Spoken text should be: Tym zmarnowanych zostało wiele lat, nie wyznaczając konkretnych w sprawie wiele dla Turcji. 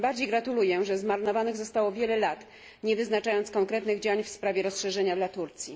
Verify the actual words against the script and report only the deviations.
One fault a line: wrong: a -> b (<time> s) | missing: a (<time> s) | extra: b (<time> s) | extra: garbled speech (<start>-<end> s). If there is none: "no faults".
extra: bardziej gratuluję że (0.1 s)
extra: działań (4.0 s)
wrong: wiele -> rozszerzenia (4.6 s)